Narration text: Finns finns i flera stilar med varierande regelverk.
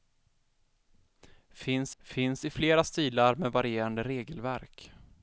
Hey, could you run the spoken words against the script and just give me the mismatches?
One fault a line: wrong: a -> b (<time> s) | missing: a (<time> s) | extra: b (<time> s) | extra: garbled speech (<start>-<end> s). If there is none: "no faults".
no faults